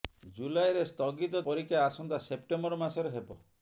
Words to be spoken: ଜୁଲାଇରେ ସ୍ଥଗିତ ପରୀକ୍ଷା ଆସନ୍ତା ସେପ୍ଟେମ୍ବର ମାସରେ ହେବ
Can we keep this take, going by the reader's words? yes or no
yes